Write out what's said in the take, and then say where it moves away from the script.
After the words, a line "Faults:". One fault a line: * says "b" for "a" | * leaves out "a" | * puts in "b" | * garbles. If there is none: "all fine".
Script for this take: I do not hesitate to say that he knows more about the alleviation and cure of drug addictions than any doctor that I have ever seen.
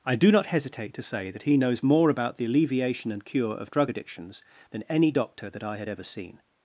I do not hesitate to say that he knows more about the alleviation and cure of drug addictions than any doctor that I had ever seen.
Faults:
* says "had" for "have"